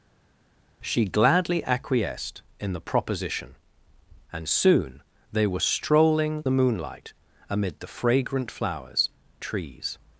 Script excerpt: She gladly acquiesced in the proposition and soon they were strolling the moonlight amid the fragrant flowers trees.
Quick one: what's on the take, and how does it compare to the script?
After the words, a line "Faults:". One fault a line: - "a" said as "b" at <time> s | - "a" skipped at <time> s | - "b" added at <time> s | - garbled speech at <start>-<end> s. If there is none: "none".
She gladly acquiesced in the proposition and soon they were strolling the moonlight amid the fragrant flowers trees.
Faults:
none